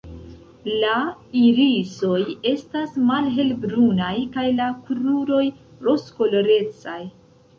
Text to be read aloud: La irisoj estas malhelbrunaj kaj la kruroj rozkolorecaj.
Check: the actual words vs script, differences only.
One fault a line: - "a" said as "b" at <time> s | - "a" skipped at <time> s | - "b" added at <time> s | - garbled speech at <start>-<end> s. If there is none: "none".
none